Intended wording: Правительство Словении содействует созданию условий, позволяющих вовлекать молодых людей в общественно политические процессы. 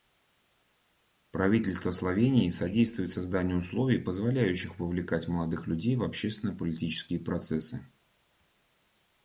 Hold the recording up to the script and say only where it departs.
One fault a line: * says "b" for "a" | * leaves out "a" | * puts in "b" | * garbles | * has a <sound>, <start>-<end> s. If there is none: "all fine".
all fine